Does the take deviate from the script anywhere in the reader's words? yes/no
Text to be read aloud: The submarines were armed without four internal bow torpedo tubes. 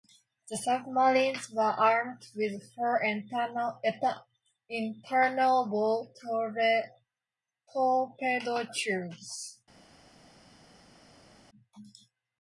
yes